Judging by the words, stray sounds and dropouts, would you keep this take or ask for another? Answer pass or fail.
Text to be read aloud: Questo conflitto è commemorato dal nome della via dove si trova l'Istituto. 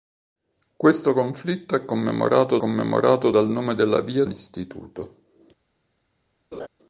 fail